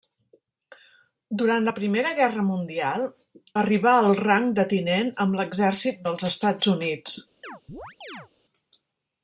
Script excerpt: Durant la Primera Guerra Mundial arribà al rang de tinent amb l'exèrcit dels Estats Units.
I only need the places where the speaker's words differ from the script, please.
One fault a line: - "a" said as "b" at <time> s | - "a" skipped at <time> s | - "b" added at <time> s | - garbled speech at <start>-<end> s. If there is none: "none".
none